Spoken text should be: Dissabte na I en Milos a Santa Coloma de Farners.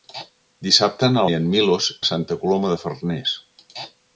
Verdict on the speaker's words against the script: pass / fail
pass